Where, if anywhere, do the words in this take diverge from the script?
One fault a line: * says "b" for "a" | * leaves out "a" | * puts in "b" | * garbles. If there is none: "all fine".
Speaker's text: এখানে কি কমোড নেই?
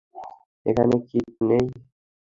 * leaves out "কমোড"